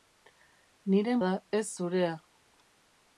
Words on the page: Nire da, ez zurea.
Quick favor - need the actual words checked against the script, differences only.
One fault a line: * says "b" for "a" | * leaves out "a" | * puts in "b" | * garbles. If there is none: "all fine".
all fine